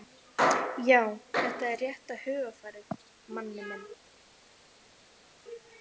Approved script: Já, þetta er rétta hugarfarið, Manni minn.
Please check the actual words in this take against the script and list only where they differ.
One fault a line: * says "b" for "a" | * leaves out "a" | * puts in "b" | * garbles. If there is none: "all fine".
all fine